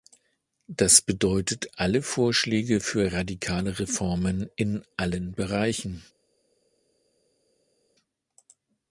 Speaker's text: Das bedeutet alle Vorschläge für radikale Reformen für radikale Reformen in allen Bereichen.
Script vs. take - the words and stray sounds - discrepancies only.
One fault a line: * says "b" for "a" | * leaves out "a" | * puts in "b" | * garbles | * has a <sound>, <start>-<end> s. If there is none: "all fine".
* leaves out "für radikale Reformen"